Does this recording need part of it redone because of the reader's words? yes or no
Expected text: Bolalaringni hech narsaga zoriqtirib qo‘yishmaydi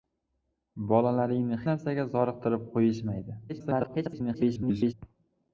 yes